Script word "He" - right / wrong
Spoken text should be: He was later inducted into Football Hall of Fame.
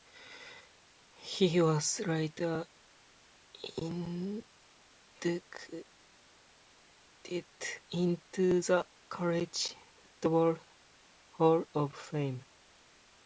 right